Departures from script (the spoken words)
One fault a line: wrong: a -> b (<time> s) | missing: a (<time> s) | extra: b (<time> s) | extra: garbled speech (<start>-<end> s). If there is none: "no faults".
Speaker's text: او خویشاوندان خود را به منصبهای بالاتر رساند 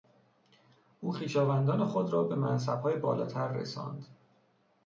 no faults